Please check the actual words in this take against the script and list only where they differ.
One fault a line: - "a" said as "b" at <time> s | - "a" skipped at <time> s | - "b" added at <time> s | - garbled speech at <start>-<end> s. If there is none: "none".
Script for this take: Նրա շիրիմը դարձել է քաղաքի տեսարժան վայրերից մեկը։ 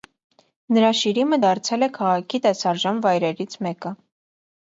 none